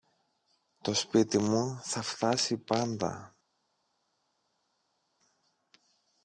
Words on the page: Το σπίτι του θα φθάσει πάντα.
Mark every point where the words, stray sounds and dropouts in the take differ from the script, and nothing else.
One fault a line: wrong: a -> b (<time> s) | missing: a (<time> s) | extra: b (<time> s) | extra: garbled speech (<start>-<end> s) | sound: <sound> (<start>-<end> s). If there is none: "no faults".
wrong: του -> μου (1.4 s)